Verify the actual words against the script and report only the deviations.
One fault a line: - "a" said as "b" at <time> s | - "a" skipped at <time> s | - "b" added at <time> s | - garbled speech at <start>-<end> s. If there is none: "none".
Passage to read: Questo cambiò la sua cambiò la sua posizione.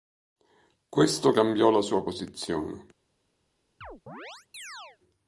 - "cambiò la sua" skipped at 2.0 s